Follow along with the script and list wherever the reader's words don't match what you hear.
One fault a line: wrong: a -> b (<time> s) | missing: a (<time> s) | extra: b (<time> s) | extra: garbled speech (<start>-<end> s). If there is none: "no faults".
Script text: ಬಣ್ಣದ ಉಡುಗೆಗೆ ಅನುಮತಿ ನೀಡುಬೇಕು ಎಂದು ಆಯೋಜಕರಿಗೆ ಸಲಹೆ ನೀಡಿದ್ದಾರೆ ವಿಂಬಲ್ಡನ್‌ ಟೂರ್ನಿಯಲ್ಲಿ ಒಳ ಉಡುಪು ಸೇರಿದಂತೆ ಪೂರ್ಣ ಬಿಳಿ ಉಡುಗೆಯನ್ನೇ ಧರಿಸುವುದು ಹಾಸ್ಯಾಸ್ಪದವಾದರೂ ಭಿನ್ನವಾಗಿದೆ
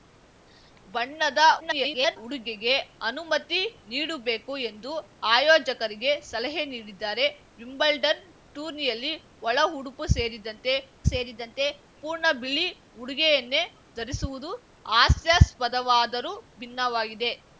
extra: garbled speech (1.6-2.2 s)
extra: ಸೇರಿದಂತೆ (11.0 s)